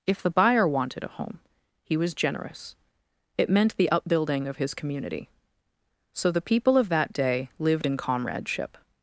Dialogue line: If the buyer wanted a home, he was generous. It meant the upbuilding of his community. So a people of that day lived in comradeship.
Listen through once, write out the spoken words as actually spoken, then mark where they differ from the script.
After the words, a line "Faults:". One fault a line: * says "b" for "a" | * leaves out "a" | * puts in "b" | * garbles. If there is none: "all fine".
If the buyer wanted a home, he was generous. It meant the upbuilding of his community. So the people of that day lived in comradeship.
Faults:
* says "the" for "a"